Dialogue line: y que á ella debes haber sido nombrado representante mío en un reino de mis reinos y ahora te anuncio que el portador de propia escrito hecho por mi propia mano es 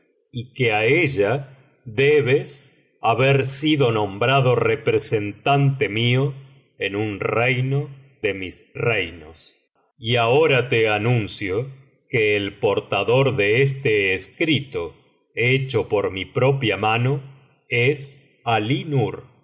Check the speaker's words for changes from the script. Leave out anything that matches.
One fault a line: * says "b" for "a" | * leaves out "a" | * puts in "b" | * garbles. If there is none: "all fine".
* says "este" for "propia"